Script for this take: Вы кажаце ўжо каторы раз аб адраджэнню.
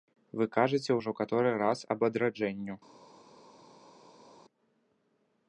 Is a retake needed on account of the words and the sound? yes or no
no